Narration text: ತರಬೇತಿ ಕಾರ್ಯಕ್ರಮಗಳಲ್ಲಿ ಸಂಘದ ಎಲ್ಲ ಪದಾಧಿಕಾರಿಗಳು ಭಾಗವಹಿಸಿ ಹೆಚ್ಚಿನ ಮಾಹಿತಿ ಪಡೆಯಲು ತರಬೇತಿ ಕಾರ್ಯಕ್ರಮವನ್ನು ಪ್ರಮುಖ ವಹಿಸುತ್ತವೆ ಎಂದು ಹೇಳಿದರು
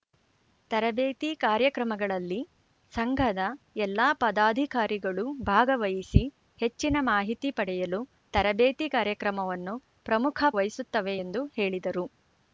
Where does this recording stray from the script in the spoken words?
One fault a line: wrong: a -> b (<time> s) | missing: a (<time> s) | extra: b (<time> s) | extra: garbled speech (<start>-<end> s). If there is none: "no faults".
no faults